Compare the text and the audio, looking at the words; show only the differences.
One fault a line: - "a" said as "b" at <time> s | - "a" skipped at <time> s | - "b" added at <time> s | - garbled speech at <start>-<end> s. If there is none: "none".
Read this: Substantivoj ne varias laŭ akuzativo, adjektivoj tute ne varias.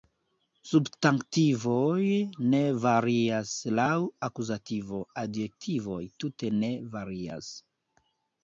none